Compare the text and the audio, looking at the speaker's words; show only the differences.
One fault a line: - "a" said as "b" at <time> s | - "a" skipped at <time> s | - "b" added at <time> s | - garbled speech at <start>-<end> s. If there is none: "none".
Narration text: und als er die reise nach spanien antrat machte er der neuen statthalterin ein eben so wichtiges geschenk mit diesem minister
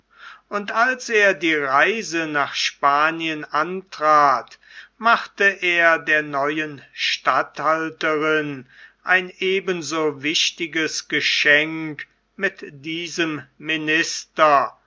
none